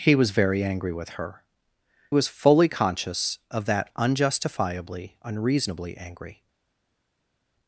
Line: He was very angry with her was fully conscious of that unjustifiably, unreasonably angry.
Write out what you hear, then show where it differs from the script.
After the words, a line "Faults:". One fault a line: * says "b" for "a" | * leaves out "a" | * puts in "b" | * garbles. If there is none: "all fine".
He was very angry with her was fully conscious of that unjustifiably, unreasonably angry.
Faults:
all fine